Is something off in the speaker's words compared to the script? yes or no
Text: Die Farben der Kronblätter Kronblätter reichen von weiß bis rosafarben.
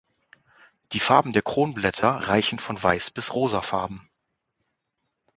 yes